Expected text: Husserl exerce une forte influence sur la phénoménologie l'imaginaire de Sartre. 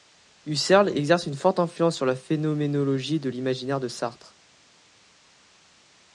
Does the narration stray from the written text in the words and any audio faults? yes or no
yes